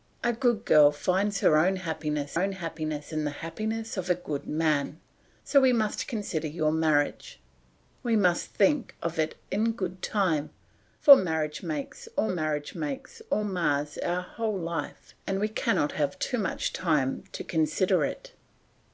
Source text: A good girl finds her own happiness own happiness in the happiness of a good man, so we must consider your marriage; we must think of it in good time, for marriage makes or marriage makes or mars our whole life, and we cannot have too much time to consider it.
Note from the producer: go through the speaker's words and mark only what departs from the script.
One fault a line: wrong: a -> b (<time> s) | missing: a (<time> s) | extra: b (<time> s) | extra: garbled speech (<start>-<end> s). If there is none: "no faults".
no faults